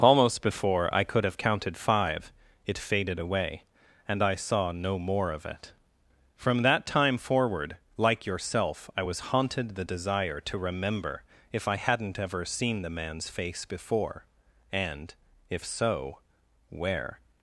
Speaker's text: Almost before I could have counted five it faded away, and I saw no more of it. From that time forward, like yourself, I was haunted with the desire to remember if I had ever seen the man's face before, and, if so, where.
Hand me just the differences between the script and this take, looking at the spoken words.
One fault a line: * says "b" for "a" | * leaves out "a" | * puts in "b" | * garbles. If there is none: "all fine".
* leaves out "with"
* says "hadn't" for "had"